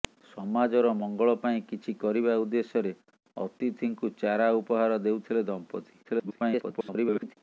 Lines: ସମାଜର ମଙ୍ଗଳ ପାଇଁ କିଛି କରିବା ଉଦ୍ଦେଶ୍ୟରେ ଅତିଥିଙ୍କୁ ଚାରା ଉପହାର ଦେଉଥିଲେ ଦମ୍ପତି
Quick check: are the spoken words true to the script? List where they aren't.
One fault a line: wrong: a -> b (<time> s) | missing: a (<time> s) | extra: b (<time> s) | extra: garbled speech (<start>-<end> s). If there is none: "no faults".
extra: garbled speech (6.0-7.4 s)